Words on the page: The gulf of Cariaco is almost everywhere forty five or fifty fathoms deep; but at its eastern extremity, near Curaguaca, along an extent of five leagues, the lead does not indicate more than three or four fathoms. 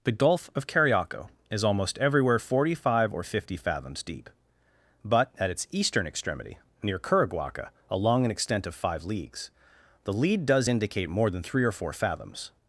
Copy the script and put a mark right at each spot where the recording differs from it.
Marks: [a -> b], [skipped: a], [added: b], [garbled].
The gulf of Cariaco is almost everywhere forty five or fifty fathoms deep; but at its eastern extremity, near Curaguaca, along an extent of five leagues, the lead does [skipped: not] indicate more than three or four fathoms.